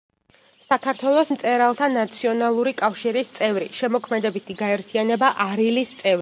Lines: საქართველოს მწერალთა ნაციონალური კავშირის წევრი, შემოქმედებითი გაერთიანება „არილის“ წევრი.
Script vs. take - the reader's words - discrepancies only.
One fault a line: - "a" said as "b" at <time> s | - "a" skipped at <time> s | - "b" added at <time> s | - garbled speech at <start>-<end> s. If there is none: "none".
none